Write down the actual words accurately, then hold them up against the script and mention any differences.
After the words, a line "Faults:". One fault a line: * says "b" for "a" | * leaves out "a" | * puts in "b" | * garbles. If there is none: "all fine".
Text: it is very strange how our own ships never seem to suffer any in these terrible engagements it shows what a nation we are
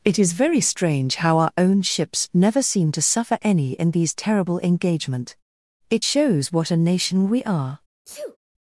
it is very strange how our own ships never seem to suffer any in these terrible engagement it shows what a nation we are
Faults:
* says "engagement" for "engagements"